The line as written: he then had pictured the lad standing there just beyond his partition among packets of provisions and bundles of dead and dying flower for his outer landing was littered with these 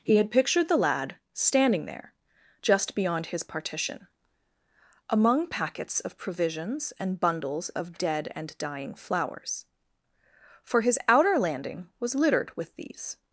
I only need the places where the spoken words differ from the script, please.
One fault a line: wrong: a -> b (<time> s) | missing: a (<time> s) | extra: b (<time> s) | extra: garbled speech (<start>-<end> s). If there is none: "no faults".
missing: then (0.1 s)
wrong: flower -> flowers (8.9 s)